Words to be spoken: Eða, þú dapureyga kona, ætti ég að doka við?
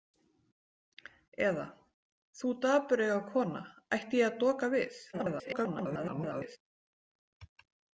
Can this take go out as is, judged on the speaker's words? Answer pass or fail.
fail